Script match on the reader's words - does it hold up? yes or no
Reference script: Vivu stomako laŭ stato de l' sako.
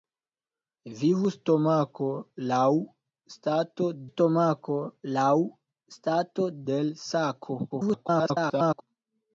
no